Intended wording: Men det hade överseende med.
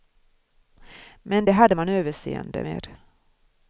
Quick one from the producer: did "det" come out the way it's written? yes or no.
yes